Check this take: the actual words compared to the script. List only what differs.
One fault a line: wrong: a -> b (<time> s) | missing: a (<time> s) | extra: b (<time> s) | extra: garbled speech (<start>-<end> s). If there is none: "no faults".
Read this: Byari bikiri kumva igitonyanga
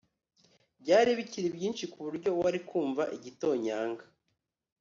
extra: byinshi kuburyo wari (1.6 s)